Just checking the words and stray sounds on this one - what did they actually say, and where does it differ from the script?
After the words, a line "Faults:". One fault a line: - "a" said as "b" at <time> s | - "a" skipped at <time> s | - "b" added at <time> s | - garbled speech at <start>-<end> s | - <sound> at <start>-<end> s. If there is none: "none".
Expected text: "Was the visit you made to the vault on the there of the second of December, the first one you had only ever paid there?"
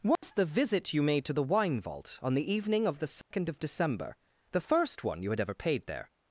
"Was the visit you made to the wine vault on the evening of the second of December, the first one you had ever paid there?"
Faults:
- dropout at 0.2-0.2 s
- "wine" added at 1.4 s
- "there" said as "evening" at 2.5 s
- dropout at 3.2-3.3 s
- "only" skipped at 5.4 s